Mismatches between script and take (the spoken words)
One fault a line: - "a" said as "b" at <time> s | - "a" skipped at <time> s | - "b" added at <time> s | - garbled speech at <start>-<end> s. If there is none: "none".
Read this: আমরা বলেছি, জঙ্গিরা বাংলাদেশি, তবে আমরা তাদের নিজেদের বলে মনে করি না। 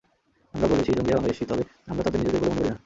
none